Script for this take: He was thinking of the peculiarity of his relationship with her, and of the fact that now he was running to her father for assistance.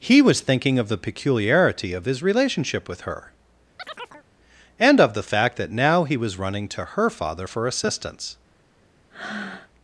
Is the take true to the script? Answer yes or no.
yes